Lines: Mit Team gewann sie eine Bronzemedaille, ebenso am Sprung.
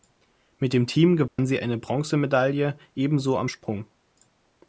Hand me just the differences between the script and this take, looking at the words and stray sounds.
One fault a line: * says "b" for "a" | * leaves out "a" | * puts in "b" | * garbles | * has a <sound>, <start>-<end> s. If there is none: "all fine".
* puts in "dem"
* has a dropout, 1.3-1.4 s